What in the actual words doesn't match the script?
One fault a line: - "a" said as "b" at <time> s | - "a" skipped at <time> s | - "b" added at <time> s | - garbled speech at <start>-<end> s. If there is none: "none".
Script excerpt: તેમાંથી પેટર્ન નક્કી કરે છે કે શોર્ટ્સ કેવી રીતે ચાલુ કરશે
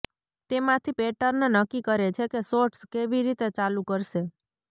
none